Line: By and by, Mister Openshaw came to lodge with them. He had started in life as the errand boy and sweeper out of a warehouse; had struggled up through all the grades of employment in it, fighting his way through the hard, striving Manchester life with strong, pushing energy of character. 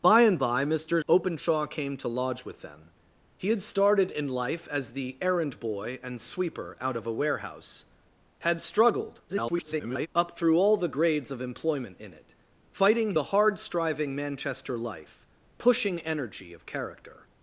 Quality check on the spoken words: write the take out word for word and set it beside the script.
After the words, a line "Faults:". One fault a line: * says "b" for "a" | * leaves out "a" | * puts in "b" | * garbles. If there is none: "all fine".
By and by, Mister Openshaw came to lodge with them. He had started in life as the errand boy and sweeper out of a warehouse; had struggled [garbled] up through all the grades of employment in it, fighting the hard, striving Manchester life pushing energy of character.
Faults:
* garbles
* leaves out "his way through"
* leaves out "with strong"